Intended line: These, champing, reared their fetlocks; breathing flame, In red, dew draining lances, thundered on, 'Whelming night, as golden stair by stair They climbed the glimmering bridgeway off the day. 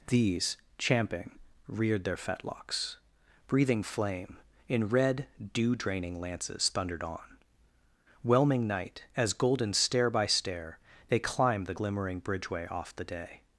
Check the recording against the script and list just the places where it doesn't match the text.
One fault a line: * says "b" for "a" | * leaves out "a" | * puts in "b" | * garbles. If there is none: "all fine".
all fine